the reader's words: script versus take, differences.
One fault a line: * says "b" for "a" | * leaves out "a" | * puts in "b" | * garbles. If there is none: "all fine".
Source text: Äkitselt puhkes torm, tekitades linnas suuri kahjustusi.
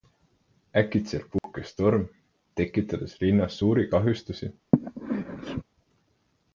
all fine